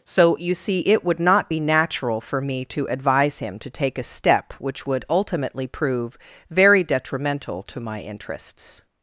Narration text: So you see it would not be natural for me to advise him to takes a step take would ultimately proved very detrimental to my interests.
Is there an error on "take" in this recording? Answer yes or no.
yes